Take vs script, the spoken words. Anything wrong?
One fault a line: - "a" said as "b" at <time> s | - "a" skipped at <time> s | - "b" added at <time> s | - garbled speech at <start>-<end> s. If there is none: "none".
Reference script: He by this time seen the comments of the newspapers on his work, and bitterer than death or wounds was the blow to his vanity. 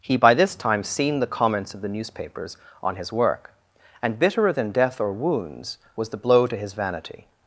none